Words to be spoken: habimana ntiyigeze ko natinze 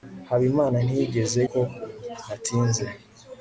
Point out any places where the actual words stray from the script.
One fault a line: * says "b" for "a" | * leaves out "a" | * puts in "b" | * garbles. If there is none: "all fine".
all fine